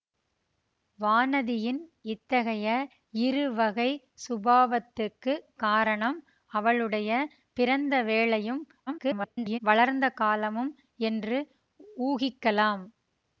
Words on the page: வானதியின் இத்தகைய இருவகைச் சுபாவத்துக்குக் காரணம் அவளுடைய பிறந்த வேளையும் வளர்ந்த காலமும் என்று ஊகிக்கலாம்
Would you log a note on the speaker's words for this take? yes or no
yes